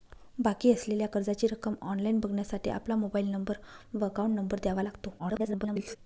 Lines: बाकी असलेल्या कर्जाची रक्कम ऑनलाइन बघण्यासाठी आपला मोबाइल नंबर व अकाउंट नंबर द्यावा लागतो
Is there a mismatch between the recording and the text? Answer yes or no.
yes